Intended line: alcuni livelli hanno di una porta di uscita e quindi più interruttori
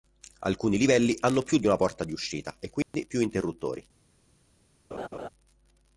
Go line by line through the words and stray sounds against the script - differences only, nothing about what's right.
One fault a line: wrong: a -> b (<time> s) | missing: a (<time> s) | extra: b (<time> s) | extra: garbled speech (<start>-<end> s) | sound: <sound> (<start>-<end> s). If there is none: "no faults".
extra: più (1.4 s)
sound: dropout (2.8-2.9 s)
sound: laugh (4.9-5.3 s)